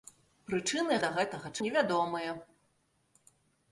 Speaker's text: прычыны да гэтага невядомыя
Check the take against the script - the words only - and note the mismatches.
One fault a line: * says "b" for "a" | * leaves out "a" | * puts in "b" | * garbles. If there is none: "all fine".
all fine